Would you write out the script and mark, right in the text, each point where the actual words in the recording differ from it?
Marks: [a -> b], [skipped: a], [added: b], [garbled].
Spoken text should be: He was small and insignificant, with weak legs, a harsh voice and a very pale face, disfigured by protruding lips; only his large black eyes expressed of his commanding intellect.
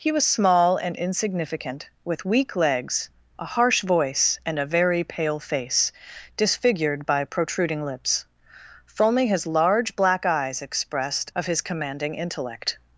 He was small and insignificant, with weak legs, a harsh voice and a very pale face, disfigured by protruding lips; only his large black eyes expressed of his commanding intellect.